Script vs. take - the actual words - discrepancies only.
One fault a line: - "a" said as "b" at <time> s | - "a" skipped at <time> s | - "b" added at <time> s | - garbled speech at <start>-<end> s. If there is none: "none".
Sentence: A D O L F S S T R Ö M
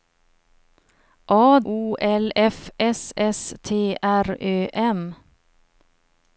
- "D" skipped at 1.6 s